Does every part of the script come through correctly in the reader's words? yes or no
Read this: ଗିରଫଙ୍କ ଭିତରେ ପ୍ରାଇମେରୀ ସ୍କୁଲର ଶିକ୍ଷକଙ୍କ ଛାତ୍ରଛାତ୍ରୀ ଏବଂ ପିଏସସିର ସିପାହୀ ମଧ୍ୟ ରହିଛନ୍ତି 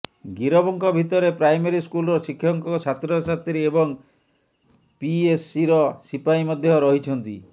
yes